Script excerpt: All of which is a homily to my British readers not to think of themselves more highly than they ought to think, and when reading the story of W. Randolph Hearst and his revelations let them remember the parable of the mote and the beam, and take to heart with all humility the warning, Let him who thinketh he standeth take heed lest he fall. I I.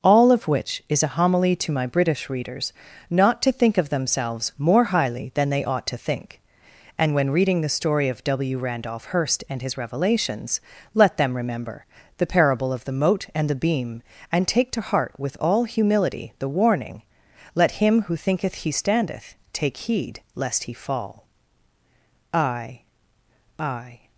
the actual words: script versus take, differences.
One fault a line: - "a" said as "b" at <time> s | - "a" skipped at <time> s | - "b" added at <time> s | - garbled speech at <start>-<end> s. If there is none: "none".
none